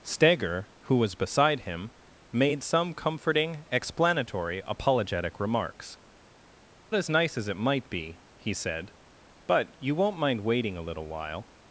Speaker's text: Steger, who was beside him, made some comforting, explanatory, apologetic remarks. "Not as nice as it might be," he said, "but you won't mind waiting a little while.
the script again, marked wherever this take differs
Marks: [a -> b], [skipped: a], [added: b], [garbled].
Steger, who was beside him, made some comforting, explanatory, apologetic remarks. [skipped: "Not] as nice as it might be," he said, "but you won't mind waiting a little while.